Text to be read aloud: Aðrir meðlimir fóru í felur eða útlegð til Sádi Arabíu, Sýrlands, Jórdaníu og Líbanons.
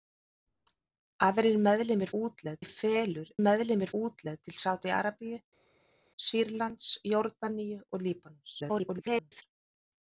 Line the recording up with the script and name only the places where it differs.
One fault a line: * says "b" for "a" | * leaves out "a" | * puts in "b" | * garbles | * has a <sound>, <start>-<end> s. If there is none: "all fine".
* says "útlegð" for "fóru"
* says "meðlimir" for "eða"
* garbles